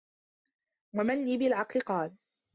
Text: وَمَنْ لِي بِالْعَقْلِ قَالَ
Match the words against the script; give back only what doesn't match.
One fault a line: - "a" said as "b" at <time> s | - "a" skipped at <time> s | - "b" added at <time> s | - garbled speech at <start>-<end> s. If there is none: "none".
none